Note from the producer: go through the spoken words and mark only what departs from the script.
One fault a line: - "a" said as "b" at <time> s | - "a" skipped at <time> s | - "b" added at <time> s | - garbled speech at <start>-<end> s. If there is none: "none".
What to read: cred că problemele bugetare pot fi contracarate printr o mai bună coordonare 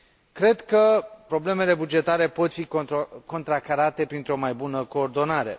none